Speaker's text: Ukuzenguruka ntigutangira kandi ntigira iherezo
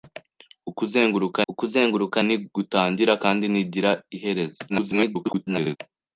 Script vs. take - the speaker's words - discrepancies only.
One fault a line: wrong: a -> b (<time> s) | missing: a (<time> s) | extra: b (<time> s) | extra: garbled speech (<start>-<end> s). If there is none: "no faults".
extra: ukuzenguruka (1.5 s)
extra: garbled speech (4.7-5.8 s)